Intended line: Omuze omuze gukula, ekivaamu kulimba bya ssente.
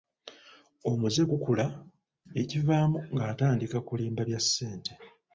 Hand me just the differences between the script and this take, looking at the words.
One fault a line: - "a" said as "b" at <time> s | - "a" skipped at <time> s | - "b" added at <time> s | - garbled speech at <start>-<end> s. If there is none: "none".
- "omuze" skipped at 1.2 s
- "ng'atandika" added at 3.1 s